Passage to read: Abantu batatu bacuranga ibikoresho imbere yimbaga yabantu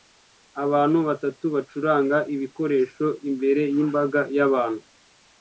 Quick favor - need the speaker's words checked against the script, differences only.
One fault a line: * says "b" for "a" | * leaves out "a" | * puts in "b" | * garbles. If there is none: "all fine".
all fine